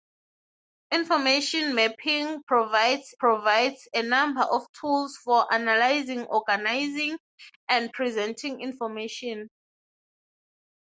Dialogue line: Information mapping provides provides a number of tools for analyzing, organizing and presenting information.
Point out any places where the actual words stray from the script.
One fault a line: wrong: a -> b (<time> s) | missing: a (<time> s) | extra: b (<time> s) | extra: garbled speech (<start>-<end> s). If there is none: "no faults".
no faults